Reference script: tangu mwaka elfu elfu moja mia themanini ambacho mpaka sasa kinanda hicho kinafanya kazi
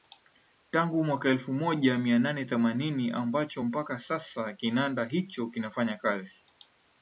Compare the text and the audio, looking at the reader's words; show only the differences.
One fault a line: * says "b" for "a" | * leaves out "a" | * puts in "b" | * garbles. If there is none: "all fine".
* leaves out "elfu"
* puts in "nane"